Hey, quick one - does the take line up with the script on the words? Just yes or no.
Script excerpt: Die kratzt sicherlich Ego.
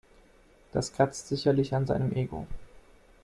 no